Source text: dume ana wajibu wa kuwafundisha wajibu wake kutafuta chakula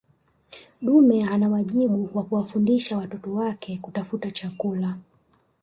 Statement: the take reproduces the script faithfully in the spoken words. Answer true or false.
false